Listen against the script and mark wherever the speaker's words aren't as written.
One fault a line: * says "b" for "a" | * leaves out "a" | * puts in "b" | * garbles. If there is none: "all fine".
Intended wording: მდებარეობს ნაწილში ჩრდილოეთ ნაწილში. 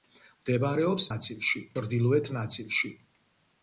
all fine